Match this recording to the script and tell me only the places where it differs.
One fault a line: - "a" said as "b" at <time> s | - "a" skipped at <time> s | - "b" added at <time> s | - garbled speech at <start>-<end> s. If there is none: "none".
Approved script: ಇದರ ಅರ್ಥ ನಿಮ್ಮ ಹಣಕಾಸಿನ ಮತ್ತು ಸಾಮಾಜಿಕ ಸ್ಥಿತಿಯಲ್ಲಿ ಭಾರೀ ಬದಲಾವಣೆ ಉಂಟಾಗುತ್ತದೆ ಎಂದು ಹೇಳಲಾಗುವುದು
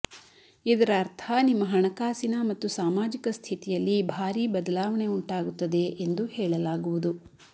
none